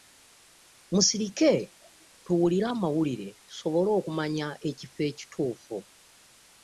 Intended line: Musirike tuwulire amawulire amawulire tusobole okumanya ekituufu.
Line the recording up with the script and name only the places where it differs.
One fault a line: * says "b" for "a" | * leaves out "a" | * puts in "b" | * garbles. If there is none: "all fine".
* leaves out "amawulire"
* puts in "ekifo"